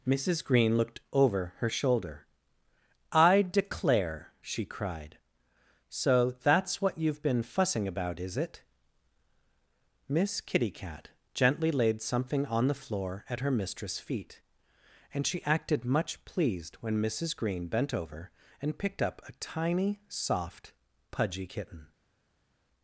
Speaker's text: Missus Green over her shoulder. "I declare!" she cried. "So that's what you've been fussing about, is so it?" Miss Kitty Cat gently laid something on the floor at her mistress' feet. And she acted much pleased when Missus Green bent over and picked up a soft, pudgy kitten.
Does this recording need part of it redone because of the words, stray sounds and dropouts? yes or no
yes